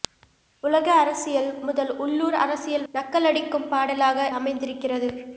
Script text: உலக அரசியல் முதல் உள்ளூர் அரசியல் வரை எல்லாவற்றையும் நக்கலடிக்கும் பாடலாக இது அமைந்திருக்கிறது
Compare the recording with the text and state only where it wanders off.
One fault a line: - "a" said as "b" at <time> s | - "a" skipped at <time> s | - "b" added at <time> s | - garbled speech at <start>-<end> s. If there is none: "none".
- "வரை எல்லாவற்றையும்" skipped at 2.9 s
- "இது" skipped at 4.3 s